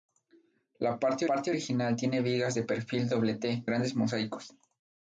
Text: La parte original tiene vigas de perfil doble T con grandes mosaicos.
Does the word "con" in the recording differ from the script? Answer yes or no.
yes